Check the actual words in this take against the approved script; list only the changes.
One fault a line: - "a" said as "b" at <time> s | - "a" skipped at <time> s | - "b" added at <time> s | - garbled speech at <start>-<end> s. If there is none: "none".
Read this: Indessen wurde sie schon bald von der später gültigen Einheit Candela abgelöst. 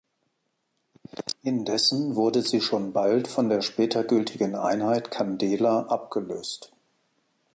none